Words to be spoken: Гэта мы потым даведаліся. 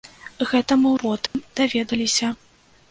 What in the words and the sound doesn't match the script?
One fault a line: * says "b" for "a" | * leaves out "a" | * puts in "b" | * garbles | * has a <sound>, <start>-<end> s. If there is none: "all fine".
* has a dropout, 1.3-1.3 s